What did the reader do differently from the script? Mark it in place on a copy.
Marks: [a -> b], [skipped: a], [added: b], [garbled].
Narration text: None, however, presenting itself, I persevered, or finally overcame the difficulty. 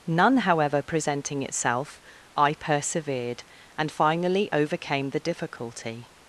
None, however, presenting itself, I persevered, [or -> and] finally overcame the difficulty.